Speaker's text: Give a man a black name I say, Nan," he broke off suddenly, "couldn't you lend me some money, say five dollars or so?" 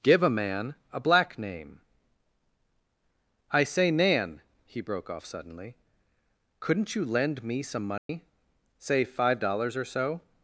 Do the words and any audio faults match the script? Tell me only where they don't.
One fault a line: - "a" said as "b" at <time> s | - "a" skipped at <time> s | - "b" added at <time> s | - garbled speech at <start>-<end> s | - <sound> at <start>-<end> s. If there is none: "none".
- dropout at 8.0-8.1 s